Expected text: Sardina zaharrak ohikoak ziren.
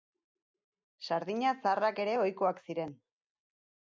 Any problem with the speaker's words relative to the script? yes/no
yes